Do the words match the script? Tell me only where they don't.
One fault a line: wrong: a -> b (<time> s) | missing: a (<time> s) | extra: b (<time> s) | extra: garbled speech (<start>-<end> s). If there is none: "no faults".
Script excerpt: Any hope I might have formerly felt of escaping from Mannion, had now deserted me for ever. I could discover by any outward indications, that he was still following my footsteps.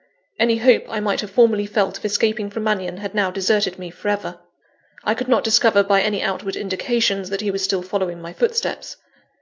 extra: not (5.3 s)